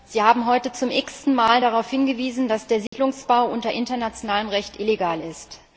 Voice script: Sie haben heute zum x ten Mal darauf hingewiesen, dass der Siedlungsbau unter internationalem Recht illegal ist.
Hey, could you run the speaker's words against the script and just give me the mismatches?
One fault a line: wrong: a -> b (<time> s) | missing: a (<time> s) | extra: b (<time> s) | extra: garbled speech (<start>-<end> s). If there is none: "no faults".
no faults